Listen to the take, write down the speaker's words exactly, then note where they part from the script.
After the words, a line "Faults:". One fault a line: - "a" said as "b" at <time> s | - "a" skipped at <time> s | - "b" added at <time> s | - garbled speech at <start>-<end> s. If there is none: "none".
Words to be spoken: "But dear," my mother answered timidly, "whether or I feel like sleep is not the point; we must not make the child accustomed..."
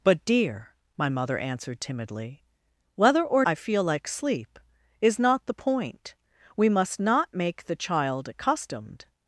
"But dear," my mother answered timidly, "whether or I feel like sleep is not the point; we must not make the child accustomed..."
Faults:
none